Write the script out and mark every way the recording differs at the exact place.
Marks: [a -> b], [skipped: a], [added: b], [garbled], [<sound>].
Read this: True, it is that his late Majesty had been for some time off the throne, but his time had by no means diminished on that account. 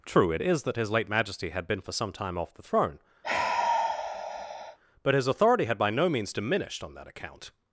True, it is that his late Majesty had been for some time off the throne, [sigh] but his [time -> authority] had by no means diminished on that account.